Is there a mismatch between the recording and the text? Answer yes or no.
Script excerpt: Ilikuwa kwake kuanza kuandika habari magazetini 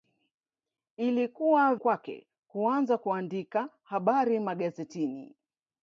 no